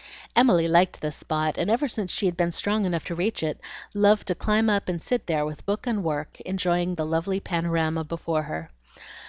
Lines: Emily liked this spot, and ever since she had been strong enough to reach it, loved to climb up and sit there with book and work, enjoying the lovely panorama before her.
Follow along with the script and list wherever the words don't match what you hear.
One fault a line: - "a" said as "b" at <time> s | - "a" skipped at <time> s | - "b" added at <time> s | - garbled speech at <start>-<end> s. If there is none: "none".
none